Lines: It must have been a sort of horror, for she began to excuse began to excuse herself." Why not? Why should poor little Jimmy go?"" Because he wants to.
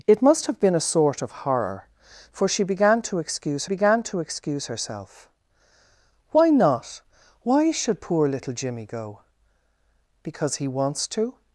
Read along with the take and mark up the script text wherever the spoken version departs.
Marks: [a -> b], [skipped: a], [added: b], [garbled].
It must have been a sort of horror, for she began to excuse began to excuse herself." Why not? Why should poor little Jimmy go?"" Because he wants to.